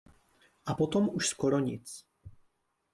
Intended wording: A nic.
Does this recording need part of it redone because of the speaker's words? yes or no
yes